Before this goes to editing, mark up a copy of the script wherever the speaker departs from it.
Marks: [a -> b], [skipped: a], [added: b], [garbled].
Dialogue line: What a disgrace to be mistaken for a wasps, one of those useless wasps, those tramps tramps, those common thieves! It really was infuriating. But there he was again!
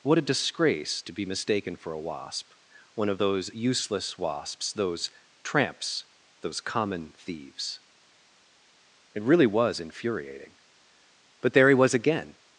What a disgrace to be mistaken for a [wasps, -> wasp] one of those useless wasps, those tramps [skipped: tramps,] those common thieves! It really was infuriating. But there he was again!